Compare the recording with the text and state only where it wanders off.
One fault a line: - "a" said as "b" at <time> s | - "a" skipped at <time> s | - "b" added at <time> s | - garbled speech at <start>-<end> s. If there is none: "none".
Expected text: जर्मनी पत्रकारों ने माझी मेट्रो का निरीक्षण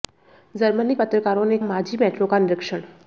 none